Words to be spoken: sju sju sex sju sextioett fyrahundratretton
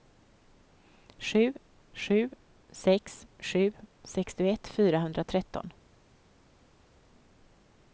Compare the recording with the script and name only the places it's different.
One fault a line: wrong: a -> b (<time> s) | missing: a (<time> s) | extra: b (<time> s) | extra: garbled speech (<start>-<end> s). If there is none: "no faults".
no faults